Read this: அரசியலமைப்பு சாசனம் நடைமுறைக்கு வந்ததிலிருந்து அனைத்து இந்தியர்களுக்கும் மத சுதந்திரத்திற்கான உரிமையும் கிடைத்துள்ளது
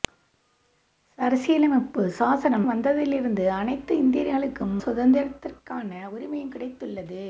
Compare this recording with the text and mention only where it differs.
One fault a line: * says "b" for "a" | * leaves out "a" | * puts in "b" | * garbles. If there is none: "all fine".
* leaves out "நடைமுறைக்கு"
* leaves out "மத"